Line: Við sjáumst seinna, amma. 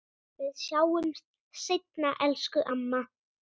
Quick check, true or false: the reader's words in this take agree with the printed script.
false